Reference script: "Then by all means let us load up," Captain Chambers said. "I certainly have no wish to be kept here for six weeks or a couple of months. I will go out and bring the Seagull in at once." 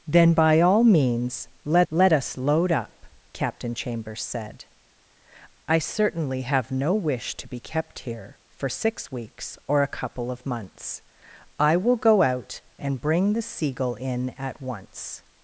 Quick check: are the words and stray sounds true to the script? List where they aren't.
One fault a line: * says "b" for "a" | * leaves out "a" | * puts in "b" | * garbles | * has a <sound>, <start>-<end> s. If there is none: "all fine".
* puts in "let"